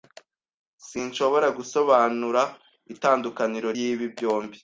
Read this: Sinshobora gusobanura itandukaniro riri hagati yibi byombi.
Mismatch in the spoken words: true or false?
true